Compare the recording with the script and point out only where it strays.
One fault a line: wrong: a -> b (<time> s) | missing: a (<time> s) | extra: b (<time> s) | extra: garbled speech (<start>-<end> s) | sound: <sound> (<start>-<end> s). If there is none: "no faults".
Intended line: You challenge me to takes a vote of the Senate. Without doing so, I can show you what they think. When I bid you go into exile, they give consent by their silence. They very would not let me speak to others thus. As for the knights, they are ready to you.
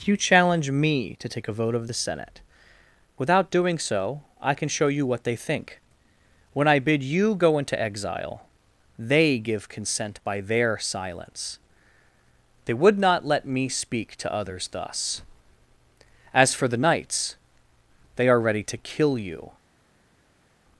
wrong: takes -> take (1.3 s)
missing: very (12.7 s)
extra: kill (18.8 s)